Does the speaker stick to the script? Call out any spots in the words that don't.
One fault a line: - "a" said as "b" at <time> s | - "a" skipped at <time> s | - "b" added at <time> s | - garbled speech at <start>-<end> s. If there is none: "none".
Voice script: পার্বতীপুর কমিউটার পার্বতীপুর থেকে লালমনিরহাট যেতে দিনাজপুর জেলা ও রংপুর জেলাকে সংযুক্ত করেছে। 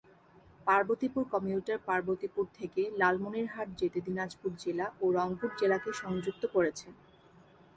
none